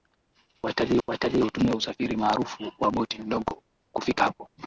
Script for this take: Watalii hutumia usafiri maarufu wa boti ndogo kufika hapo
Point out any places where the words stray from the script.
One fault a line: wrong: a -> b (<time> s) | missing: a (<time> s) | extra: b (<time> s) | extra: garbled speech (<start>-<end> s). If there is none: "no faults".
extra: watalii (1.1 s)